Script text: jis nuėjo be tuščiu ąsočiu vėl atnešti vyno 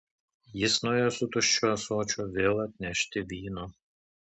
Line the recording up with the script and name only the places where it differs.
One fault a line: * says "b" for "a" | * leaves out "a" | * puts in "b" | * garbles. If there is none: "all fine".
* says "su" for "be"